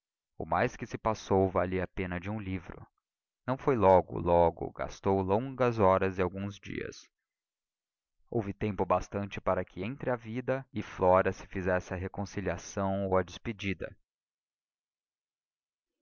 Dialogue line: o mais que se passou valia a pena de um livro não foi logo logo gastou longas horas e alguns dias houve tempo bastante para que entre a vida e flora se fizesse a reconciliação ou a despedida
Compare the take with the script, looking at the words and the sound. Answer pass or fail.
pass